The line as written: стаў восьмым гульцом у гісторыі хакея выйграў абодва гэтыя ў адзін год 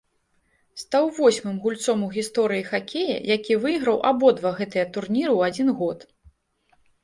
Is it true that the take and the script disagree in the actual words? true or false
true